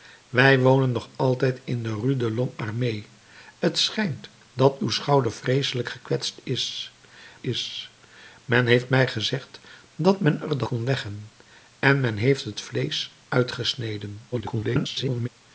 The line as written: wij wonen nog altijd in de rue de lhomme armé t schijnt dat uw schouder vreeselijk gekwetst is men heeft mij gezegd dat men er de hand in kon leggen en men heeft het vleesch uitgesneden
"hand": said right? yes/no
no